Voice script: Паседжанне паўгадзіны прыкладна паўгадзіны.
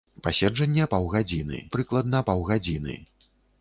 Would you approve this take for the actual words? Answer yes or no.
yes